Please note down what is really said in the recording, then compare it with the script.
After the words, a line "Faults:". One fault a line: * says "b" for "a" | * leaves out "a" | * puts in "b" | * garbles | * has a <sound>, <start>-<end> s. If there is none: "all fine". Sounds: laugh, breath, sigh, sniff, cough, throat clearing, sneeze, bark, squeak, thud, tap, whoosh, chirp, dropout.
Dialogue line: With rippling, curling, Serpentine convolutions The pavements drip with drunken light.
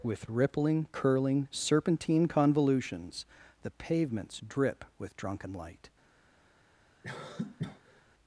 With rippling, curling, Serpentine convolutions The pavements drip with drunken light.
Faults:
* has a cough, 7.0-8.0 s